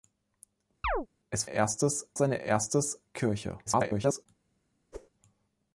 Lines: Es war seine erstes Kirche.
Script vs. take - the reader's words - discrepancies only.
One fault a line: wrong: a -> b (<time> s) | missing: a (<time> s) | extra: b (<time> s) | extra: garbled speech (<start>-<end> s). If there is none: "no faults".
wrong: war -> erstes (1.4 s)
extra: garbled speech (3.7-4.3 s)